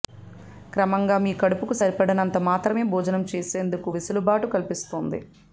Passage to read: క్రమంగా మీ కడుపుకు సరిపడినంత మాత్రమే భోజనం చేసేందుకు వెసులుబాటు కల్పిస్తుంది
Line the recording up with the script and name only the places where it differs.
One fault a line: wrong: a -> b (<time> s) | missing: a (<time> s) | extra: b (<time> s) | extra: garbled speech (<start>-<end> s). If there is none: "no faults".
no faults